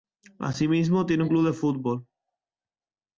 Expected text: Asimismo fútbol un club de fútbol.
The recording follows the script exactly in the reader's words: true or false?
false